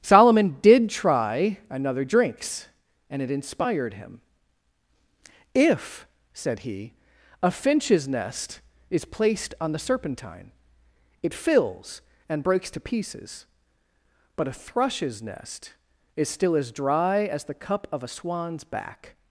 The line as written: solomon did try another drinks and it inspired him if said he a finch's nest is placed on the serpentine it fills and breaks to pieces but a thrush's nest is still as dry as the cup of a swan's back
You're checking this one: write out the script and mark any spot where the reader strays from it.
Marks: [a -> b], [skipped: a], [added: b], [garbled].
solomon did try another drinks and it inspired him if said he a finch's nest is placed on the serpentine it fills and breaks to pieces but a thrush's nest is still as dry as the cup of a swan's back